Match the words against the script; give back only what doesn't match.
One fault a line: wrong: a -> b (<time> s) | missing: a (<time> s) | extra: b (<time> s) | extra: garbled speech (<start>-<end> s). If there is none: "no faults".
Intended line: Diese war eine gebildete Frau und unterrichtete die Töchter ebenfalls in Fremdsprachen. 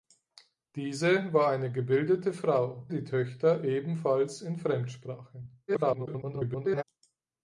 missing: und unterrichtete (2.9 s)
extra: garbled speech (5.7-6.8 s)